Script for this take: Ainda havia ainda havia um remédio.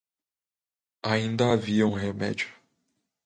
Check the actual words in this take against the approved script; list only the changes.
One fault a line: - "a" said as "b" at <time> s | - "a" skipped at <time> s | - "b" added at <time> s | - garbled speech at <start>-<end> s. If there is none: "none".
- "ainda havia" skipped at 1.9 s